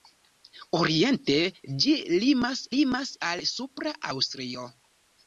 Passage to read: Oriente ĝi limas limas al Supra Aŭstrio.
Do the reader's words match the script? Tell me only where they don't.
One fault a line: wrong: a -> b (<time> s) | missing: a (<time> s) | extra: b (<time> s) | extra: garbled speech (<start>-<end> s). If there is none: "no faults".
no faults